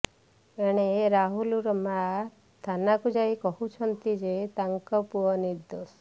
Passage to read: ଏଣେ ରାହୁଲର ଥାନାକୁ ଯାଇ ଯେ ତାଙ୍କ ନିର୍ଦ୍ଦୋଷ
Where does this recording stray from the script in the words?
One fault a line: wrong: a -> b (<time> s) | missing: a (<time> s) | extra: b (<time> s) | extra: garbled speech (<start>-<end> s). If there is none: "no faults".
extra: ମାଆ (1.8 s)
extra: କହୁଛନ୍ତି (3.4 s)
extra: ପୁଅ (5.1 s)